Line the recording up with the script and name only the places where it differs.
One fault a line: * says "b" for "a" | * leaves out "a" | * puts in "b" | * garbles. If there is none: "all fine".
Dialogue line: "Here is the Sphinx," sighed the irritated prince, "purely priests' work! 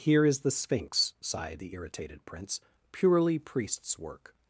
all fine